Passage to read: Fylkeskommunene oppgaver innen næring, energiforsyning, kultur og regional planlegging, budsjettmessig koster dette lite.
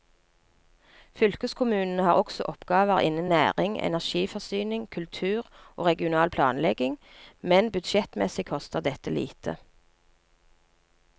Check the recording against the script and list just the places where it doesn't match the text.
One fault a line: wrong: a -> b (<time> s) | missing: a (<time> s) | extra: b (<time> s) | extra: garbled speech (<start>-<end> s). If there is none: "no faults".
extra: har også (2.0 s)
extra: men (7.4 s)